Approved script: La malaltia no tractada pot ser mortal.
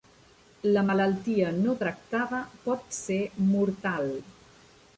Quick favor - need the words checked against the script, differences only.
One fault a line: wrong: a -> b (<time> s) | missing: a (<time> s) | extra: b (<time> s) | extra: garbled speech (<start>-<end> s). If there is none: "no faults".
no faults